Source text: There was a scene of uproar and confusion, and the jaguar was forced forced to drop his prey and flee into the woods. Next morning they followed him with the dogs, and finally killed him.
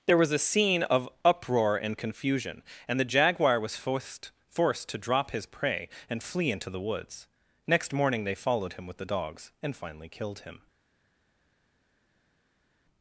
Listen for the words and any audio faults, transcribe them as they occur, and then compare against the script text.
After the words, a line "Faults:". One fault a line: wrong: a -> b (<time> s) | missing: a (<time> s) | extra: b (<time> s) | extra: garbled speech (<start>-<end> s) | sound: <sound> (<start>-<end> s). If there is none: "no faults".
There was a scene of uproar and confusion, and the jaguar was forced forced to drop his prey and flee into the woods. Next morning they followed him with the dogs, and finally killed him.
Faults:
no faults